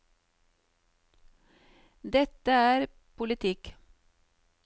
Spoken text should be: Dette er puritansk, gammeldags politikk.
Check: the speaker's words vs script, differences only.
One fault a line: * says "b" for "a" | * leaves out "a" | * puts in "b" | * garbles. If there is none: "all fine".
* leaves out "puritansk gammeldags"